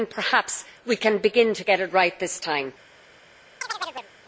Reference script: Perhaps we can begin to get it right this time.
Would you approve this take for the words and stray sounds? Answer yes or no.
no